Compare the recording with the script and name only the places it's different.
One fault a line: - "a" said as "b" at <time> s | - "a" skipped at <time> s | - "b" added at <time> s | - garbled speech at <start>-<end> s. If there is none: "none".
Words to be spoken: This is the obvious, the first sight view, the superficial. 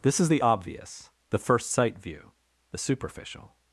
none